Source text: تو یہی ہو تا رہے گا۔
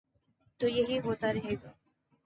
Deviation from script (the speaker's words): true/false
false